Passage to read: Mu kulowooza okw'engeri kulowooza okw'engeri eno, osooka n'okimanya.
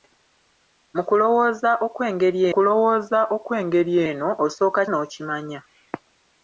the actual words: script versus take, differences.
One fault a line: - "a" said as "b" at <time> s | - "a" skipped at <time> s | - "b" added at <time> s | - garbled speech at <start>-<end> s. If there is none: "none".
none